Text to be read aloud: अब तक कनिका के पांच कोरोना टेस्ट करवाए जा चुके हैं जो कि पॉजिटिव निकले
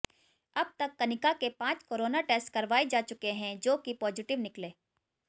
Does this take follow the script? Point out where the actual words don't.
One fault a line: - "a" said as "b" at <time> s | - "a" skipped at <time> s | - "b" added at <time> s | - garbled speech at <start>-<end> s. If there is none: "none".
none